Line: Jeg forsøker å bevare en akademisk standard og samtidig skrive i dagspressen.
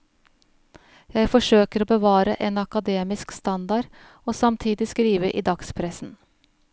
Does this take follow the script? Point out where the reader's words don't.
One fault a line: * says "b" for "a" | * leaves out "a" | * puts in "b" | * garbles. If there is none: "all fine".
all fine